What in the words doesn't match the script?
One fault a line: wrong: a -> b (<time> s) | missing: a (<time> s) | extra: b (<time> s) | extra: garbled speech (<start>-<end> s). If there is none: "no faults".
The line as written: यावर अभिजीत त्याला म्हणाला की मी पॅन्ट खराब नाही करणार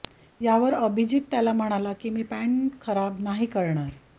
no faults